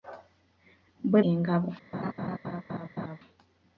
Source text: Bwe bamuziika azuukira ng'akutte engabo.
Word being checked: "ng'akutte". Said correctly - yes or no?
no